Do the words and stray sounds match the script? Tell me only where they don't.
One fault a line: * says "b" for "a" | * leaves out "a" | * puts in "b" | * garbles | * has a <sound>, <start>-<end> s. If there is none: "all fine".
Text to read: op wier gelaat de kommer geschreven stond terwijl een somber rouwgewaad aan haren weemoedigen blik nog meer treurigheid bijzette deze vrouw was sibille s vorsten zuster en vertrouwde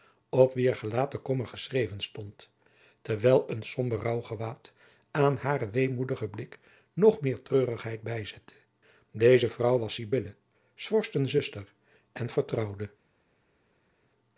all fine